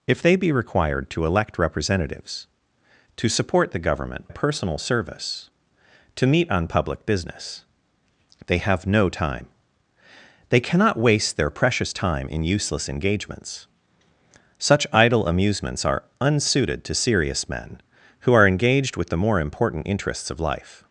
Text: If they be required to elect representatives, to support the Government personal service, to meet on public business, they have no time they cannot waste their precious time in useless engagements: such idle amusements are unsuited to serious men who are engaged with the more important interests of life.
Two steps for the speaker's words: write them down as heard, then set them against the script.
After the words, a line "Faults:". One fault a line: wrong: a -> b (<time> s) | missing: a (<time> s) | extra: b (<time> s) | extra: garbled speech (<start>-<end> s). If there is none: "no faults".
If they be required to elect representatives, to support the Government personal service, to meet on public business, they have no time they cannot waste their precious time in useless engagements: such idle amusements are unsuited to serious men who are engaged with the more important interests of life.
Faults:
no faults